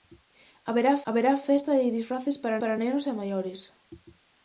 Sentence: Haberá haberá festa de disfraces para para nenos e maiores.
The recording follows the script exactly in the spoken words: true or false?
true